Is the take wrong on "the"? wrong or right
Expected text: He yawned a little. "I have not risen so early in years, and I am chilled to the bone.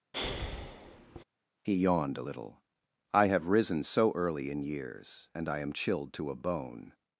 wrong